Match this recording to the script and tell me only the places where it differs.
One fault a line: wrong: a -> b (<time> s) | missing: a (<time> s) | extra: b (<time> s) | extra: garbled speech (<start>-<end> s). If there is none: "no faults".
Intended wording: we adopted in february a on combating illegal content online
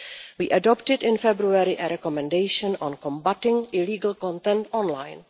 extra: recommendation (1.9 s)